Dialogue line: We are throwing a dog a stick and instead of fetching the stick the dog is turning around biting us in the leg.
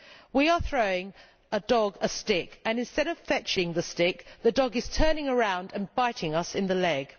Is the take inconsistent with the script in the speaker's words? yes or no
yes